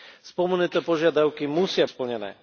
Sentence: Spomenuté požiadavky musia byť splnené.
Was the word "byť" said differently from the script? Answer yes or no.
yes